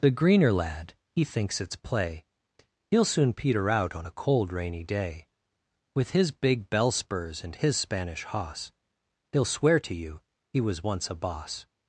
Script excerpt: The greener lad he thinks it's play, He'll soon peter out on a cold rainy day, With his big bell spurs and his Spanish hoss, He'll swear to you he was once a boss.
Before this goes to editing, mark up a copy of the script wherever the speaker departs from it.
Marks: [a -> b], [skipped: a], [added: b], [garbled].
The greener lad he thinks it's play, He'll soon peter out on a cold rainy day, With his big bell spurs and his Spanish hoss, He'll swear to you he was once a boss.